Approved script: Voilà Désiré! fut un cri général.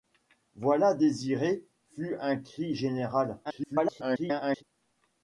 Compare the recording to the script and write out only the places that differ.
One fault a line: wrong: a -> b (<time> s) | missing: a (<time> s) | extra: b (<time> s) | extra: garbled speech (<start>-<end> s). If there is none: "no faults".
extra: garbled speech (3.4-4.6 s)